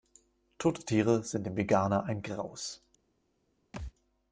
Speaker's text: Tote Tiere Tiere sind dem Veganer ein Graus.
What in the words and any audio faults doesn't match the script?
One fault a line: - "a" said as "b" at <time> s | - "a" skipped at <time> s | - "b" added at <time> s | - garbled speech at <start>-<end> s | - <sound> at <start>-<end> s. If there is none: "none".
- "Tiere" skipped at 1.2 s
- thud at 3.7-3.9 s